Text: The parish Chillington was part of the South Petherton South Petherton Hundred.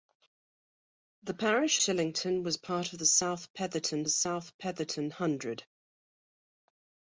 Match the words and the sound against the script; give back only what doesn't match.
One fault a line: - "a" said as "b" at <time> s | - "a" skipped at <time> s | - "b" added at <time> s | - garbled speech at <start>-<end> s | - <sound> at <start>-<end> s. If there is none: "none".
none